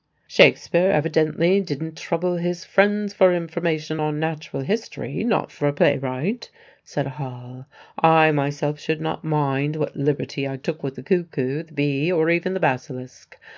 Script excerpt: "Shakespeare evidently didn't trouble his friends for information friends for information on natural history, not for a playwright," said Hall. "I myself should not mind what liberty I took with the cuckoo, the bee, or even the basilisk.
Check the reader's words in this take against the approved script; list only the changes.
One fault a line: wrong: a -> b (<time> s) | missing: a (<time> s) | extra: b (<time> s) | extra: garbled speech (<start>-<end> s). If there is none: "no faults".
missing: friends for information (4.0 s)